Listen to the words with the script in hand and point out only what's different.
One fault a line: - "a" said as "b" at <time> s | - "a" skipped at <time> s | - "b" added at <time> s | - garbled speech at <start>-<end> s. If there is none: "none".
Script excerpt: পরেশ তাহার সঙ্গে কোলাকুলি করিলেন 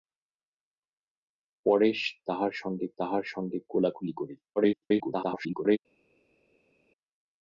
- "তাহার সঙ্গে" added at 3.0 s
- garbled speech at 4.6-5.8 s